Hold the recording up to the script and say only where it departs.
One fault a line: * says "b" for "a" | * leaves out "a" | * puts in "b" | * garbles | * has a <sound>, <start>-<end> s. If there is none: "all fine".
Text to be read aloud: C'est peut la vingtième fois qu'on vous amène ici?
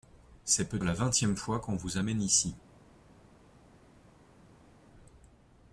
all fine